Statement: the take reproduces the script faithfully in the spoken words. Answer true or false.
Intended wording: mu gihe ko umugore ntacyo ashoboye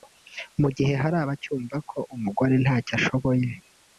false